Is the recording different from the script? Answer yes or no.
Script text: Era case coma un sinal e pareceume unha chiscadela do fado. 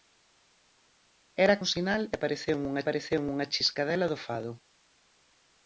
yes